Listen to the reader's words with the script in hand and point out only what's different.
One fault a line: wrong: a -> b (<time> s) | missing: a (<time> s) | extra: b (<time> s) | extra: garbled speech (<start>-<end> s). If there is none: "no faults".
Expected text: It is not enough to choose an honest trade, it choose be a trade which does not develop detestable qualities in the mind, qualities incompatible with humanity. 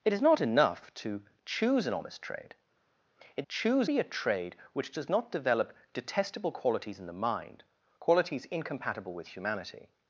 no faults